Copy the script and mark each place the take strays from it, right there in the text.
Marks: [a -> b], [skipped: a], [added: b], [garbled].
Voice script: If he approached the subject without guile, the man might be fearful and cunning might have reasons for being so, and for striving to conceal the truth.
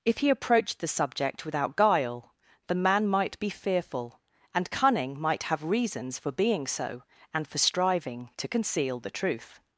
If he approached the subject without guile, the man might be fearful and cunning might have reasons for being so, and for striving to conceal the truth.